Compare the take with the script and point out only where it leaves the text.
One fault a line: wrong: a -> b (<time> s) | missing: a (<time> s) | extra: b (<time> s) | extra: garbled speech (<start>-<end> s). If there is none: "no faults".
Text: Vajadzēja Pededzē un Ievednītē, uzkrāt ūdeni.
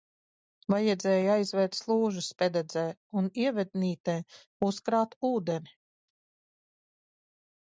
extra: aizvērt slūžas (1.4 s)